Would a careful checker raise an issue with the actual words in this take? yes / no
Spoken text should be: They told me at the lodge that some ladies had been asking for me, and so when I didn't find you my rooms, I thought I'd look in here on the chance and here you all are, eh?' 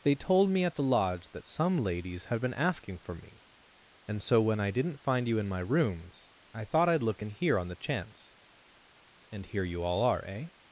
yes